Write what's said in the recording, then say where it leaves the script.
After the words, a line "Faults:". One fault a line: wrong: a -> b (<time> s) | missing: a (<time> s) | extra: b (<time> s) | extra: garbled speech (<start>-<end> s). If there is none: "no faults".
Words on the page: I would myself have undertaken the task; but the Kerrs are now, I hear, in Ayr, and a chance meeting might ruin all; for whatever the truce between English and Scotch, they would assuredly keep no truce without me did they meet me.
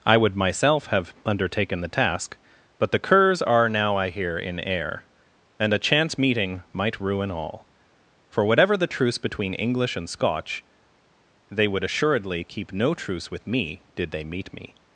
I would myself have undertaken the task; but the Kerrs are now, I hear, in Ayr, and a chance meeting might ruin all; for whatever the truce between English and Scotch, they would assuredly keep no truce with me did they meet me.
Faults:
wrong: without -> with (13.3 s)